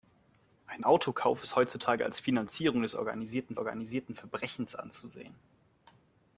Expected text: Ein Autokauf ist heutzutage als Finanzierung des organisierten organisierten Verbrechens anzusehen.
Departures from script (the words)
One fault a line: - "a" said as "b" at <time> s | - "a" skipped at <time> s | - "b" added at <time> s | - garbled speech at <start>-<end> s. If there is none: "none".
none